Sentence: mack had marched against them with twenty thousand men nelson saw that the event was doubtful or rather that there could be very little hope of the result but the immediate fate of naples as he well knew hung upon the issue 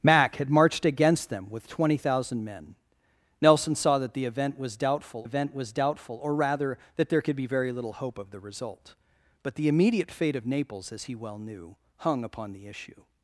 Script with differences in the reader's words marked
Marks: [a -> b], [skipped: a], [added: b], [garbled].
mack had marched against them with twenty thousand men nelson saw that the event was doubtful [added: event was doubtful] or rather that there could be very little hope of the result but the immediate fate of naples as he well knew hung upon the issue